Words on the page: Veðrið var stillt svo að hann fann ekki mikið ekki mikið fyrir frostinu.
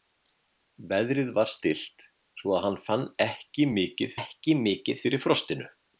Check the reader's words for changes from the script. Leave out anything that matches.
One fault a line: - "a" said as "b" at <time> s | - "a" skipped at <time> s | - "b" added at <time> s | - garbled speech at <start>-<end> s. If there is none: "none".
none